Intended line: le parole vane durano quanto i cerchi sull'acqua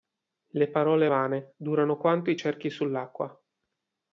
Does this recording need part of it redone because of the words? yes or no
no